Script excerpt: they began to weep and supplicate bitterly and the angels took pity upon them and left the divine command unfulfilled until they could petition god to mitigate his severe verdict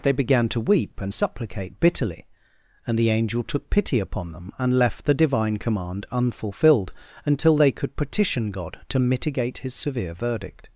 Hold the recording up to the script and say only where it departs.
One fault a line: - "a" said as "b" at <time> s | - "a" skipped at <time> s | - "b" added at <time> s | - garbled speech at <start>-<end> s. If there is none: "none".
- "angels" said as "angel" at 3.1 s